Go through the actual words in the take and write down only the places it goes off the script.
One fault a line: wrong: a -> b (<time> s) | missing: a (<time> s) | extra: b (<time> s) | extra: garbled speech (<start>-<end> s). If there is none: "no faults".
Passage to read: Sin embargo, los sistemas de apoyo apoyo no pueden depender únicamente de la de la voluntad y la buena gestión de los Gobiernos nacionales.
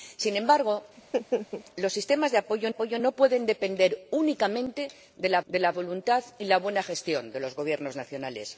no faults